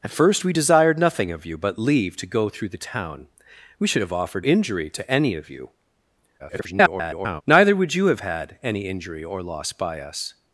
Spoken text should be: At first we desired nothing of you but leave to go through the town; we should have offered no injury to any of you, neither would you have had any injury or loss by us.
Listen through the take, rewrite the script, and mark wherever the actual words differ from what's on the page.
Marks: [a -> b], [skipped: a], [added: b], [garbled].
At first we desired nothing of you but leave to go through the town; we should have offered [skipped: no] injury to any of you, [garbled] neither would you have had any injury or loss by us.